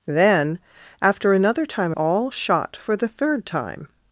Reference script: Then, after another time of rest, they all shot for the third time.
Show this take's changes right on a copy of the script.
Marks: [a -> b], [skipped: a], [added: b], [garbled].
Then, after another time [skipped: of rest, they] all shot for the third time.